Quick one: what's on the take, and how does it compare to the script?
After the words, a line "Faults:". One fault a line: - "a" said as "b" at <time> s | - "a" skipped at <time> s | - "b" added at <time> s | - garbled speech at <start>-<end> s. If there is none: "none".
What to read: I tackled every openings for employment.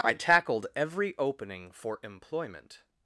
I tackled every opening for employment.
Faults:
- "openings" said as "opening" at 1.2 s